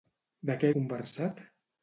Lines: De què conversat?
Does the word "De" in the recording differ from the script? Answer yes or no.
no